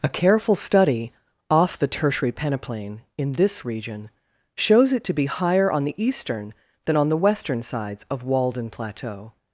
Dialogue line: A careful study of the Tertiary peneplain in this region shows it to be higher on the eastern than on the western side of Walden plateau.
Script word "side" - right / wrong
wrong